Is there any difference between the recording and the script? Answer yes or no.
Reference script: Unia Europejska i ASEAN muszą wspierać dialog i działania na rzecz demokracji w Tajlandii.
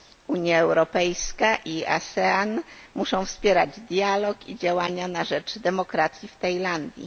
no